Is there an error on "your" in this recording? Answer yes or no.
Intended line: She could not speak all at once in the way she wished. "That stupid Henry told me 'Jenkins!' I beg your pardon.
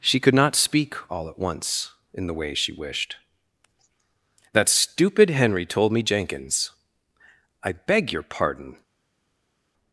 no